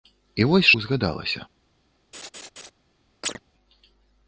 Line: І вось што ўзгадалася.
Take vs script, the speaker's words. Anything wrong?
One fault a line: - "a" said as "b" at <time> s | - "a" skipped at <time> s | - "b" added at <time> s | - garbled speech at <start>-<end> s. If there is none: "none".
- "што" skipped at 0.7 s